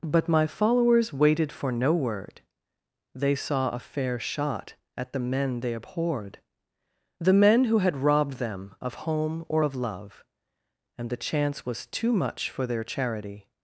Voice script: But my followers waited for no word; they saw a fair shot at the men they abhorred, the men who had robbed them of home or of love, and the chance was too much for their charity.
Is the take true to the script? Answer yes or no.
yes